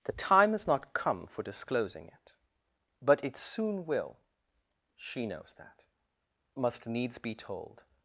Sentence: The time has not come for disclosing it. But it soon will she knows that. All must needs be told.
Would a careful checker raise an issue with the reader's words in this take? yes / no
yes